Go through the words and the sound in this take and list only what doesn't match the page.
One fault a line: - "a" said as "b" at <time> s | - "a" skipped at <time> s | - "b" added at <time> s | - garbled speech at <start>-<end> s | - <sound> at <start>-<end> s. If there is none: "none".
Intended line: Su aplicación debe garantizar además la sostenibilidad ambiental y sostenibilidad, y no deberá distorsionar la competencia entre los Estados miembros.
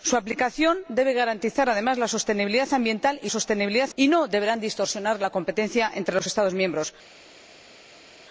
none